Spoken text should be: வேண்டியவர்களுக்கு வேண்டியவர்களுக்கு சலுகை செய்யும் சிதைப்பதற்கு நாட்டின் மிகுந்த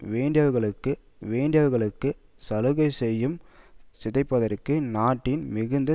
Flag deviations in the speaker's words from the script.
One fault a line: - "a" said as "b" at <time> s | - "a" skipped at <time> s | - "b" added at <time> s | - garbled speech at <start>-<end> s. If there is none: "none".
none